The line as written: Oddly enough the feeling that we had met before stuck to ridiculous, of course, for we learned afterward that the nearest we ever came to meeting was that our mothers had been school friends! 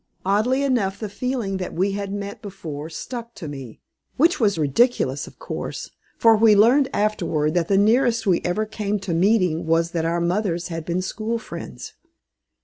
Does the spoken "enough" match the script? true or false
true